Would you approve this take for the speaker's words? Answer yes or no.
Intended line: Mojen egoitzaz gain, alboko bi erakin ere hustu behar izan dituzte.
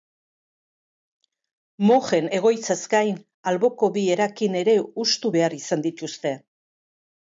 yes